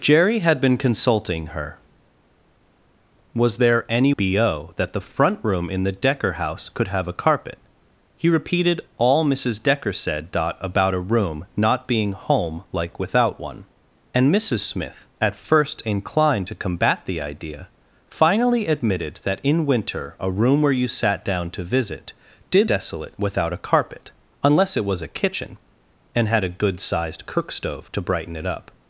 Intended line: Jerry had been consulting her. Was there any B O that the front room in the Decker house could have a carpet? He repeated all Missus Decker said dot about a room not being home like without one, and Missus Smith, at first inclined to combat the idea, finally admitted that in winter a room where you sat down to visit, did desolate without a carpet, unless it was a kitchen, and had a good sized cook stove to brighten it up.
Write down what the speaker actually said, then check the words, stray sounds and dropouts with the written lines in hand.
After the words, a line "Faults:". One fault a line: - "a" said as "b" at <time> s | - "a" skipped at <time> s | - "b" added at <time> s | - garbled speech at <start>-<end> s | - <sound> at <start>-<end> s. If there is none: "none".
Jerry had been consulting her. Was there any B O that the front room in the Decker house could have a carpet? He repeated all Missus Decker said dot about a room not being home like without one, and Missus Smith, at first inclined to combat the idea, finally admitted that in winter a room where you sat down to visit, did desolate without a carpet, unless it was a kitchen, and had a good sized cook stove to brighten it up.
Faults:
none